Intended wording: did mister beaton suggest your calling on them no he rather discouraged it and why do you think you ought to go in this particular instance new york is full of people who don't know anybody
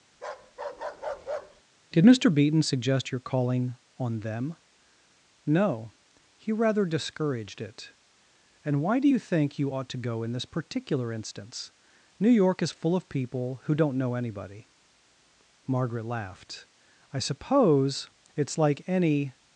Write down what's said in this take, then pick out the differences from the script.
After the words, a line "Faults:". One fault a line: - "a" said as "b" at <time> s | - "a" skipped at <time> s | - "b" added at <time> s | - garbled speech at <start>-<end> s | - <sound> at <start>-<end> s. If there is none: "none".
did mister beaton suggest your calling on them no he rather discouraged it and why do you think you ought to go in this particular instance new york is full of people who don't know anybody margaret laughed i suppose it's like any
Faults:
- bark at 0.1-1.6 s
- "margaret laughed i suppose it's like any" added at 15.6 s